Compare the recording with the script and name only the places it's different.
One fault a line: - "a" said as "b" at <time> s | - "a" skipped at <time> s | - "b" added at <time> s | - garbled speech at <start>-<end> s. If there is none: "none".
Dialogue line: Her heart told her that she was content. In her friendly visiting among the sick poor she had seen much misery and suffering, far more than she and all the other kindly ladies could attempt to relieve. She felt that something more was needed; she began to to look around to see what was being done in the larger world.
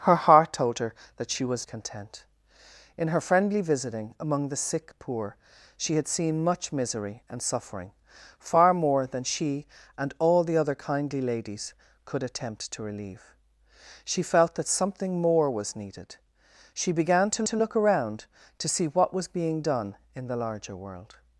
none